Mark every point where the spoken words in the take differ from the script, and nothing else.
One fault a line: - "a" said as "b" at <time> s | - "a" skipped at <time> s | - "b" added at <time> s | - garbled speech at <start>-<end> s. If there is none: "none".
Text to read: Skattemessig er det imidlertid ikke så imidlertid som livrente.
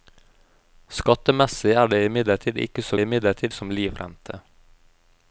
none